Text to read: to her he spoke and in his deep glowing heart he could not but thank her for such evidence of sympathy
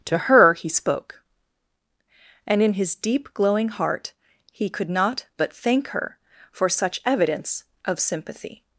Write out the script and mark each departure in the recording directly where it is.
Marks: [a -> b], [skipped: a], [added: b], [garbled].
to her he spoke and in his deep glowing heart he could not but thank her for such evidence of sympathy